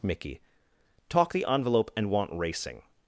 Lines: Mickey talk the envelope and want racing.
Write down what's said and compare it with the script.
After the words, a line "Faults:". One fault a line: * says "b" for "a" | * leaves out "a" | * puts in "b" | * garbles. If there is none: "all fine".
Mickey talk the envelope and want racing.
Faults:
all fine